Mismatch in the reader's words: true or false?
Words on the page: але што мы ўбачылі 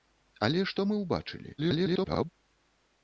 true